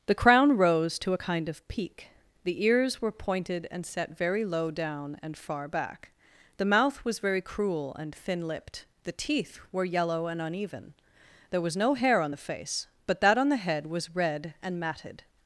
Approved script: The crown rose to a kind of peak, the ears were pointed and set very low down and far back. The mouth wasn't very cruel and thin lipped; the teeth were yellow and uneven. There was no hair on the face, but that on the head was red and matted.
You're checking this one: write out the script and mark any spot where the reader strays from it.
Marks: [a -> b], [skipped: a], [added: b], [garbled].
The crown rose to a kind of peak, the ears were pointed and set very low down and far back. The mouth [wasn't -> was] very cruel and thin lipped; the teeth were yellow and uneven. There was no hair on the face, but that on the head was red and matted.